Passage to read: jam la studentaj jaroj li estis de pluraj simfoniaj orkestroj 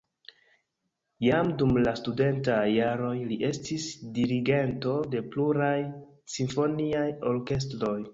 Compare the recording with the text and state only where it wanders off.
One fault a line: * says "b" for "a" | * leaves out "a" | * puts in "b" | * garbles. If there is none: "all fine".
* puts in "dum"
* puts in "dirigento"